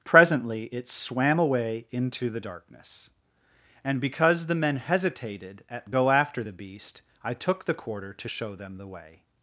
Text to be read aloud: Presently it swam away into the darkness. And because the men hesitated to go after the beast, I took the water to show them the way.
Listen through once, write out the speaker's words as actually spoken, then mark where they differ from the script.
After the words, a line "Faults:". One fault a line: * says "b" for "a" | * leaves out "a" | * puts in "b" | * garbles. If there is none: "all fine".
Presently it swam away into the darkness. And because the men hesitated at go after the beast, I took the quarter to show them the way.
Faults:
* says "at" for "to"
* says "quarter" for "water"